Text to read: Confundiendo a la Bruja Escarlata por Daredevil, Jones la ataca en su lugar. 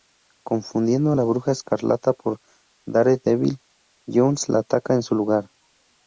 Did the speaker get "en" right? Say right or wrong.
right